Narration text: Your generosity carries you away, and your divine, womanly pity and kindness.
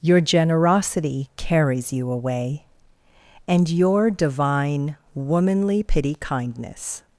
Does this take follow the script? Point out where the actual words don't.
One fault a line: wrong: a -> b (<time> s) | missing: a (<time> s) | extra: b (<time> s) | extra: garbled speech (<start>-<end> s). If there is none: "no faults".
missing: and (6.2 s)